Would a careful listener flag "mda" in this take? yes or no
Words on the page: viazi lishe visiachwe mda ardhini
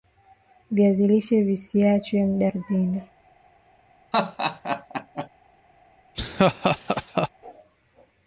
no